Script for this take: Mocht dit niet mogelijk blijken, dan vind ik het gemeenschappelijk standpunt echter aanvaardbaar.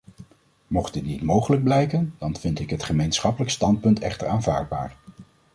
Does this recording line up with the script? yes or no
yes